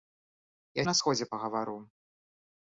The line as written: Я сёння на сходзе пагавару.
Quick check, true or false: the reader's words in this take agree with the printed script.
false